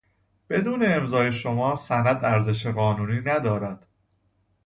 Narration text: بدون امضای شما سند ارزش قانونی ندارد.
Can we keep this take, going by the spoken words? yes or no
yes